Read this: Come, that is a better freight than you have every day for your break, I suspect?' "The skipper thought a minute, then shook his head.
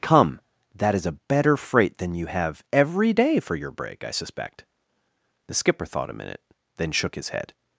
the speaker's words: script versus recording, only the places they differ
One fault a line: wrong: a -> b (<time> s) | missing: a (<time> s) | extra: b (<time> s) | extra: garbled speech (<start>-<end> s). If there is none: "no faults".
no faults